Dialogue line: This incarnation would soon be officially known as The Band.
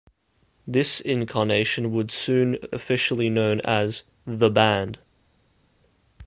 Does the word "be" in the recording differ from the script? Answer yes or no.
yes